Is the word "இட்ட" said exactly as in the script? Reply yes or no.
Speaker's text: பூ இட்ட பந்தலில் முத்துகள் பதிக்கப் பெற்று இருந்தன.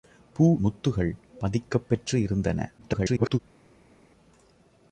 no